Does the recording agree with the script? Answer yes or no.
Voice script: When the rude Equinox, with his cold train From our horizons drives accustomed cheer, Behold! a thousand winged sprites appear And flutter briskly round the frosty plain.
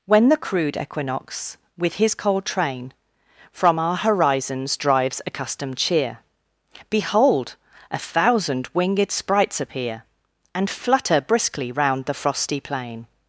no